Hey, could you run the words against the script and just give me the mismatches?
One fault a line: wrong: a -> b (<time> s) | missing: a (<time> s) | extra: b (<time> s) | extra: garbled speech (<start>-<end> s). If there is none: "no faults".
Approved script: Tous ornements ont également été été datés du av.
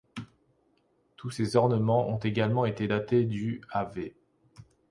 extra: ces (1.3 s)
missing: été (2.9 s)